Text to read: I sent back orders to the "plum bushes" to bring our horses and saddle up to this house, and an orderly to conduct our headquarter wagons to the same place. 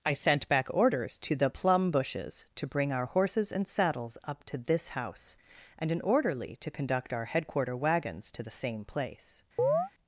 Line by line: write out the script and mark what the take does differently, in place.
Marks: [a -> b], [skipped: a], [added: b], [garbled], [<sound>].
I sent back orders to the "plum bushes" to bring our horses and [saddle -> saddles] up to this house, and an orderly to conduct our headquarter wagons to the same place. [chirp]